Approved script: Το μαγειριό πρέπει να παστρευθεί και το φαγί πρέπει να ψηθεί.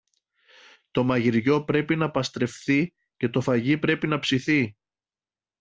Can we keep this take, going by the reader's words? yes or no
yes